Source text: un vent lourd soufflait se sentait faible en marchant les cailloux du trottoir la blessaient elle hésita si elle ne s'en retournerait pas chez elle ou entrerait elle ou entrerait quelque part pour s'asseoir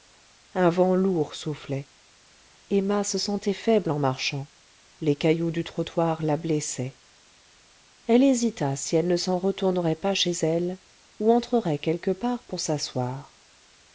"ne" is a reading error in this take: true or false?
false